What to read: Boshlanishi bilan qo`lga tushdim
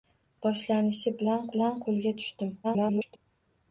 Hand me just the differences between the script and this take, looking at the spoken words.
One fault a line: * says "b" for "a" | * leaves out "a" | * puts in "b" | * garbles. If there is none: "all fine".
* puts in "bilan"
* garbles